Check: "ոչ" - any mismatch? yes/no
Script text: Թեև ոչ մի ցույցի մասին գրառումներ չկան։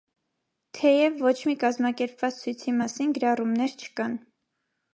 no